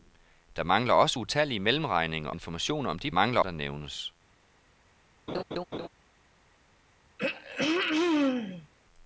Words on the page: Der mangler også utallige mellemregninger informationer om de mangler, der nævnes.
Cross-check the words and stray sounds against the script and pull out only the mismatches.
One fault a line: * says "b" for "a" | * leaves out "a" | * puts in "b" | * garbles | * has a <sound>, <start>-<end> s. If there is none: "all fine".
* has a laugh, 5.3-5.9 s
* has a throat clearing, 7.2-8.7 s